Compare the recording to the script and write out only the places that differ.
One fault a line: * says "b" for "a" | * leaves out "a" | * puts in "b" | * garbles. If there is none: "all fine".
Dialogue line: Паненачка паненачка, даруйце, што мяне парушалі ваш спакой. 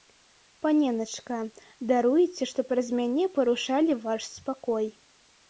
* leaves out "паненачка"
* puts in "праз"